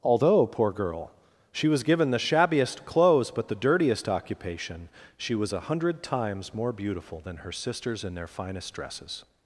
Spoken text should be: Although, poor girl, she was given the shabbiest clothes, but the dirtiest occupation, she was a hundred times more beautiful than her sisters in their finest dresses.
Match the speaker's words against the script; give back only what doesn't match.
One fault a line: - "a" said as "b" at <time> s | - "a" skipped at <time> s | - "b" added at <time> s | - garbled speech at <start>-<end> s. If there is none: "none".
none